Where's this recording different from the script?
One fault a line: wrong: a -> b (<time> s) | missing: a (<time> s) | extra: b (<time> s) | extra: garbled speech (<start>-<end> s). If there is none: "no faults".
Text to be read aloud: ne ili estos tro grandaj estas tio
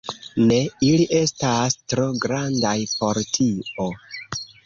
wrong: estos -> estas (1.2 s)
wrong: estas -> por (3.0 s)